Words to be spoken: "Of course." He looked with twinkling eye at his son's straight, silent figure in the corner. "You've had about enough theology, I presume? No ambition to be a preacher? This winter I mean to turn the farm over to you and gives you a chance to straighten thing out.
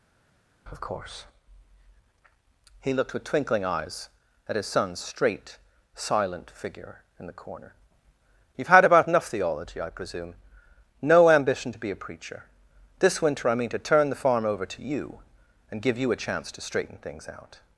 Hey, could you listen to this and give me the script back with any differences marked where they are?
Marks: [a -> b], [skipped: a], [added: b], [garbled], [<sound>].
"Of course." He looked with twinkling [eye -> eyes] at his son's straight, silent figure in the corner. "You've had about enough theology, I presume? No ambition to be a preacher? This winter I mean to turn the farm over to you and [gives -> give] you a chance to straighten [thing -> things] out.